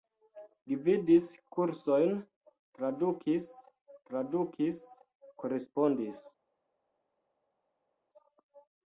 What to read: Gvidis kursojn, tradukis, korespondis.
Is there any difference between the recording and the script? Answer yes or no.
yes